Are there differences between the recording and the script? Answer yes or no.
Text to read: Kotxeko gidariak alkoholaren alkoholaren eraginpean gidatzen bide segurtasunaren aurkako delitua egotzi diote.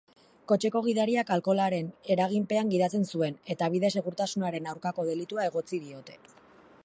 yes